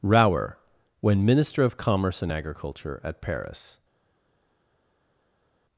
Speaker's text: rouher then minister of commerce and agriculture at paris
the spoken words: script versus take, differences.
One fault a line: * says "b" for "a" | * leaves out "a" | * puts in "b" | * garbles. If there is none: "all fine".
* says "when" for "then"